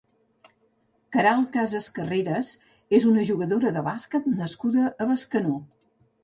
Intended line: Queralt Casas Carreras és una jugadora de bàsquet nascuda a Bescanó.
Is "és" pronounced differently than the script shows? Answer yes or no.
no